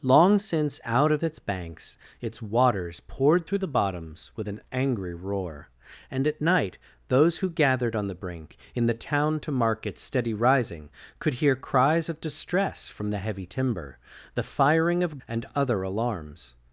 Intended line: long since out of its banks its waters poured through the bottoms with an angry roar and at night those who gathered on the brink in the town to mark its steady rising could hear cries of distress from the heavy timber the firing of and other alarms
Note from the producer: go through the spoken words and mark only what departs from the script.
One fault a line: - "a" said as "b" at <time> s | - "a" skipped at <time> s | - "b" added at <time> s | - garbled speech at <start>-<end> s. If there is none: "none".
none